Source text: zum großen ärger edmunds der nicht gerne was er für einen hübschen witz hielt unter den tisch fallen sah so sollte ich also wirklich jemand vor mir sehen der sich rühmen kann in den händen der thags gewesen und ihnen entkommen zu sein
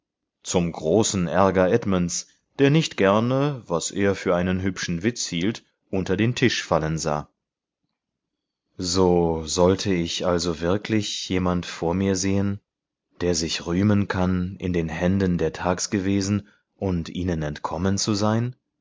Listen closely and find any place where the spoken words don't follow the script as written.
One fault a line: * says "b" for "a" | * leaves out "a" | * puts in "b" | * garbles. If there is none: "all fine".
all fine